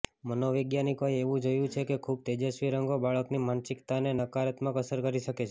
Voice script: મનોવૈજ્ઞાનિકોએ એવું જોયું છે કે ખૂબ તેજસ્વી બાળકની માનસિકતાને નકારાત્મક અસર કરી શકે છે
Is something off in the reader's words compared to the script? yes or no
yes